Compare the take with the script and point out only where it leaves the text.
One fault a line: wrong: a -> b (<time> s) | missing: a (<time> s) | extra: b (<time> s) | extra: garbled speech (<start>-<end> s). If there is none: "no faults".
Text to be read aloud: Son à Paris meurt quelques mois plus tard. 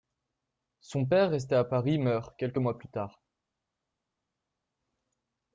extra: père resté (1.1 s)